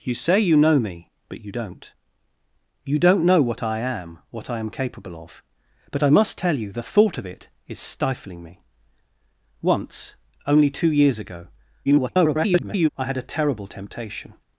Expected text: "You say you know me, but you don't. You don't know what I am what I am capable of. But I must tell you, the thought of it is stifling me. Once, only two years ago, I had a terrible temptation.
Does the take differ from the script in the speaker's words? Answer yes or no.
yes